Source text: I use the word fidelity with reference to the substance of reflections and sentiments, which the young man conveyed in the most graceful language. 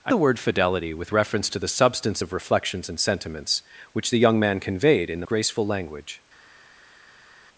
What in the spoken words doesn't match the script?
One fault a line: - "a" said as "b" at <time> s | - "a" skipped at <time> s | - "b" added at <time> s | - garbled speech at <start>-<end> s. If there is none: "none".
- "use" skipped at 0.1 s
- "most" skipped at 5.3 s